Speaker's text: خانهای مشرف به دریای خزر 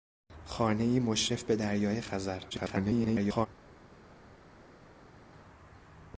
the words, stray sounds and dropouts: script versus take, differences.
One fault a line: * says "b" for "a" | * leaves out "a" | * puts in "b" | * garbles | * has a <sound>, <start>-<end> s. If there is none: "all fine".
* garbles